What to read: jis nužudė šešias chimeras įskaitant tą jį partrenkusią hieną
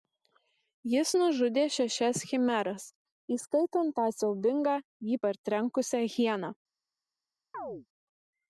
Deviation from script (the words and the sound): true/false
true